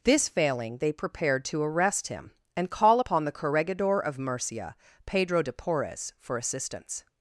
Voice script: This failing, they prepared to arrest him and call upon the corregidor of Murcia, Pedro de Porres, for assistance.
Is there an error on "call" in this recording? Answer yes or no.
no